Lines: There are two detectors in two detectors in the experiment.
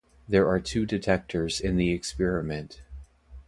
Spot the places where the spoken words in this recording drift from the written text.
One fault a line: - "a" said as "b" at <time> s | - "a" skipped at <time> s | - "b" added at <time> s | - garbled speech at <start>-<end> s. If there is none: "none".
- "two detectors in" skipped at 1.8 s